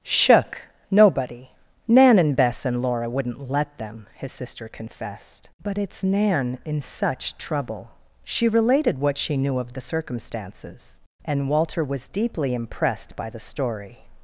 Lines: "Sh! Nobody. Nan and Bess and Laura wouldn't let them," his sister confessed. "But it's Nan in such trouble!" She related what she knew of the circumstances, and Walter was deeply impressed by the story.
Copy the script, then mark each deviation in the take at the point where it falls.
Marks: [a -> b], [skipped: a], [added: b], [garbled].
["Sh! -> Shook] Nobody. Nan and Bess and Laura wouldn't let them," his sister confessed. "But it's Nan in such trouble!" She related what she knew of the circumstances, and Walter was deeply impressed by the story.